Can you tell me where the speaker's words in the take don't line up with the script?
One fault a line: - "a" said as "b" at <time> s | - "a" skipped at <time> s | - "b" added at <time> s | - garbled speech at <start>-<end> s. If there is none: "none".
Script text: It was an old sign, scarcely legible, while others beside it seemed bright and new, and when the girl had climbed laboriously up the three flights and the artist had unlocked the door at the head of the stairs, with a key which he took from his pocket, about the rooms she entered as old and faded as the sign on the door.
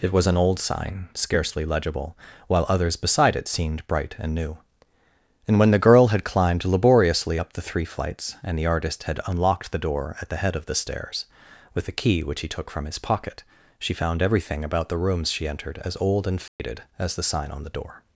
- "she found everything" added at 13.8 s